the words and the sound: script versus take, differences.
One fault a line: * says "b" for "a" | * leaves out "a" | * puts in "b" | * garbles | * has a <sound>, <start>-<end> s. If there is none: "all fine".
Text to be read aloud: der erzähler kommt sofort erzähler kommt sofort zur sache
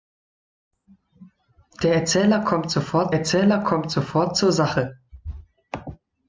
all fine